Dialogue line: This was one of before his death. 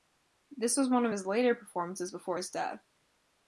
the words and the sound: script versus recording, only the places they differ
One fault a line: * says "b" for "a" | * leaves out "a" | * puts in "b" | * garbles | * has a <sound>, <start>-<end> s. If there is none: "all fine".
* puts in "his later performances"